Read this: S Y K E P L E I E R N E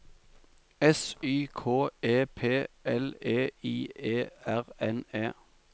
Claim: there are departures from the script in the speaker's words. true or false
false